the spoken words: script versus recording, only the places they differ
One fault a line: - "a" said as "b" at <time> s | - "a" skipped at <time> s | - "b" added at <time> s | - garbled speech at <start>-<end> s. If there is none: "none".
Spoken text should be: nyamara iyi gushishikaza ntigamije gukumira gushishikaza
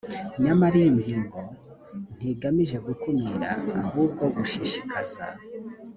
- "gushishikaza" said as "ngingo" at 1.0 s
- "ahubwo" added at 3.8 s